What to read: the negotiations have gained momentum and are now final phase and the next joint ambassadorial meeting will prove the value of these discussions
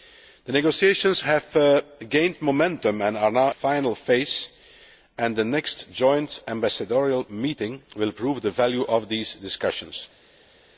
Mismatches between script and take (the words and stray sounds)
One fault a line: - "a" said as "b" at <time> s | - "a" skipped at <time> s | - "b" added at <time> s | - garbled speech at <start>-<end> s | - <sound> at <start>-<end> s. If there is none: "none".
none